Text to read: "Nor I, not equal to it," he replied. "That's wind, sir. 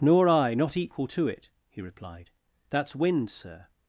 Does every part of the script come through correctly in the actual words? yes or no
yes